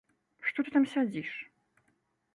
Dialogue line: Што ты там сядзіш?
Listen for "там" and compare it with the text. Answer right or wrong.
right